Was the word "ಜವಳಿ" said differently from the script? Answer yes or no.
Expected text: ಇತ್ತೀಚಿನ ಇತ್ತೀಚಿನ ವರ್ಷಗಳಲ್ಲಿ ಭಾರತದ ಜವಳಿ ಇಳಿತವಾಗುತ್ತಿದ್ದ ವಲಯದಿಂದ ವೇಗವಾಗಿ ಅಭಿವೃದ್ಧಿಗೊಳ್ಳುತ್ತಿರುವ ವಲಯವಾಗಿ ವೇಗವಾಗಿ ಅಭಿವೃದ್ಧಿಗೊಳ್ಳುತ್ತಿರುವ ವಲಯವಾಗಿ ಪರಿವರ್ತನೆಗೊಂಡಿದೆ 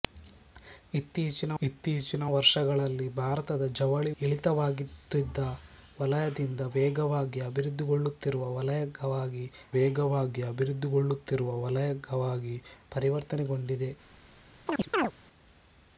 no